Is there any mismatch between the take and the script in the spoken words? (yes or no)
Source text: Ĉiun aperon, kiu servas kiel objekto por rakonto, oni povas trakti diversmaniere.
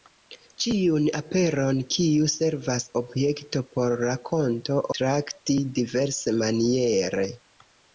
yes